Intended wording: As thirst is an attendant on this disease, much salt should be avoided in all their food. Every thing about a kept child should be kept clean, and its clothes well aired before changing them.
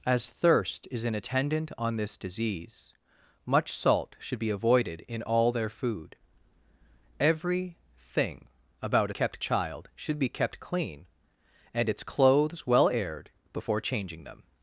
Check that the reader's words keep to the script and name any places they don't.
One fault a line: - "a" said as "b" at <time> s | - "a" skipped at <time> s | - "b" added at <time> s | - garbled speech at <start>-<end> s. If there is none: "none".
none